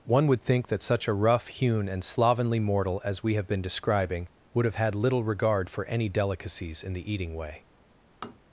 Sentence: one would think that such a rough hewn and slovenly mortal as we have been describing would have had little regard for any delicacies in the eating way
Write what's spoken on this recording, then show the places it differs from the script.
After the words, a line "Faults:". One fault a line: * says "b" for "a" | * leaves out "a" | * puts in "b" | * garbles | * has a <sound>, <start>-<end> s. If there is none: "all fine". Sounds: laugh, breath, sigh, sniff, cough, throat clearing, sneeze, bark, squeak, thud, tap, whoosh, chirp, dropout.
one would think that such a rough hewn and slovenly mortal as we have been describing would have had little regard for any delicacies in the eating way
Faults:
* has a tap, 8.2-8.4 s